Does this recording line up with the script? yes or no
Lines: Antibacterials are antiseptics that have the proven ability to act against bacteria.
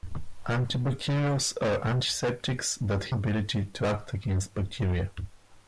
no